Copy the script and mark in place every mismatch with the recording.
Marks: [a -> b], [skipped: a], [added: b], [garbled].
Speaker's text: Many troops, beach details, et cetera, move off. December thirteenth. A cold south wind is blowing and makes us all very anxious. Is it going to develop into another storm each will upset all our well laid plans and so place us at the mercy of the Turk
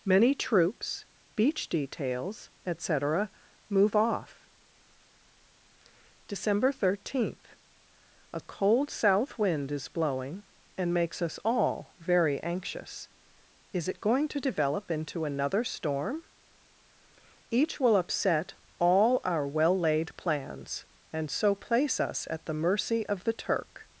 Many troops, beach details, et cetera, move off. December thirteenth. A cold south wind is blowing and makes us all very anxious. Is it going to develop into another storm each will upset all our well laid plans and so place us at the mercy of the Turk